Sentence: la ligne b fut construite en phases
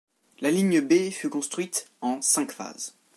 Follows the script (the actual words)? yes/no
no